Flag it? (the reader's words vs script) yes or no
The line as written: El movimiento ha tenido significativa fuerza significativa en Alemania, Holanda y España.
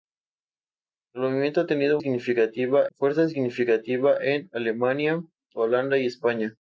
no